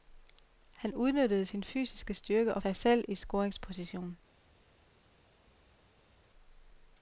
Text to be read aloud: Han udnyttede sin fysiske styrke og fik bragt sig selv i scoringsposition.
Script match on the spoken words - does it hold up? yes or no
no